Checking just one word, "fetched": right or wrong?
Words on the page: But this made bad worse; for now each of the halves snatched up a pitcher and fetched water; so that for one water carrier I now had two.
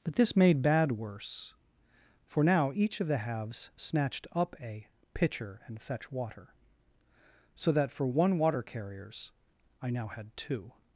wrong